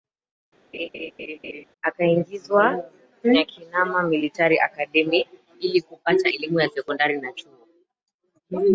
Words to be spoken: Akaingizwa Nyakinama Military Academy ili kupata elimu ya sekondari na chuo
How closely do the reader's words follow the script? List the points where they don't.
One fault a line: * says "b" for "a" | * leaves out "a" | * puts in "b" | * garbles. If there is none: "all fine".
all fine